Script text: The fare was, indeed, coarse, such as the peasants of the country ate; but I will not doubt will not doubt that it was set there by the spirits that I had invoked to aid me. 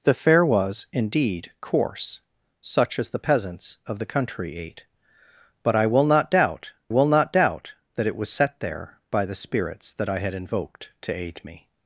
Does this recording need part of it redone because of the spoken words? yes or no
no